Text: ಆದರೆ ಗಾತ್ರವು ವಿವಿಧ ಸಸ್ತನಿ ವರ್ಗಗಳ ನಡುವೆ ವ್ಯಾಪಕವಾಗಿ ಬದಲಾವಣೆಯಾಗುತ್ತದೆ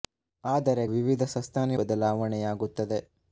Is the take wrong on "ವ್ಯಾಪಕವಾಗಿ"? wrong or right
wrong